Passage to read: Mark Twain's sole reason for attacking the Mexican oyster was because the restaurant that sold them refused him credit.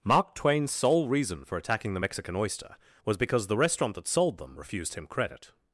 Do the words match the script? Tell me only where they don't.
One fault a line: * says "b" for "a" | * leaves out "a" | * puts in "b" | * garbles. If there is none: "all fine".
all fine